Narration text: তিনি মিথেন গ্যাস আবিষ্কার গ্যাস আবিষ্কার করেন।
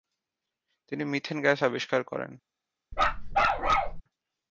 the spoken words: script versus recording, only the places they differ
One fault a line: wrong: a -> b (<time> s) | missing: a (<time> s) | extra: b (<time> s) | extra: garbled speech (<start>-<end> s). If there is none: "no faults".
missing: গ্যাস আবিষ্কার (2.0 s)